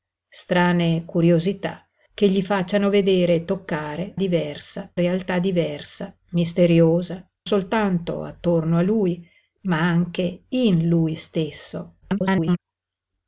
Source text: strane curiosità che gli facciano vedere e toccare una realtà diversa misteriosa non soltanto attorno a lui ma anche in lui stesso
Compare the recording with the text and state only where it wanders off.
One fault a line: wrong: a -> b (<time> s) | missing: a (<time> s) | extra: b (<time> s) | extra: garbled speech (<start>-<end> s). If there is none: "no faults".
wrong: una -> diversa (4.1 s)
missing: non (7.2 s)
extra: garbled speech (12.0-12.6 s)